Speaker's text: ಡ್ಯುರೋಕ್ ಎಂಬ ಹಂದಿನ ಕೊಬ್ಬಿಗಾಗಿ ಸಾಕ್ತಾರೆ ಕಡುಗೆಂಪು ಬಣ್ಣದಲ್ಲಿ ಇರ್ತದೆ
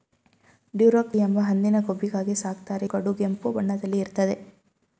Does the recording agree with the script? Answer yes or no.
yes